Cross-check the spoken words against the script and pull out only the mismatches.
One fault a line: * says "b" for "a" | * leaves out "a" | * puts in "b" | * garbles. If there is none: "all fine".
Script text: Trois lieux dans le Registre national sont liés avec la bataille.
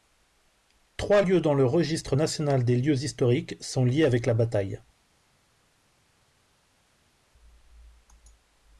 * puts in "des lieux historiques"